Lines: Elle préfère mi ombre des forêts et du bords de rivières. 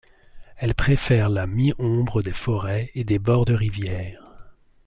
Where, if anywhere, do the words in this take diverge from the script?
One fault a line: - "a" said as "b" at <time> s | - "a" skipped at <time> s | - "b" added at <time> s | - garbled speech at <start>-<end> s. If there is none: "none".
- "la" added at 1.3 s
- "du" said as "des" at 3.0 s